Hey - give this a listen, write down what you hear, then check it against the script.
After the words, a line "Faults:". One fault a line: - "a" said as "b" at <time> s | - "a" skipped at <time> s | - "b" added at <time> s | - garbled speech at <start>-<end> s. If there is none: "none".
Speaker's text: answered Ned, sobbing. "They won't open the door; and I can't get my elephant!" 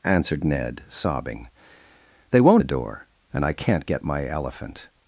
answered Ned, sobbing. "They won't the door; and I can't get my elephant!"
Faults:
- "open" skipped at 2.6 s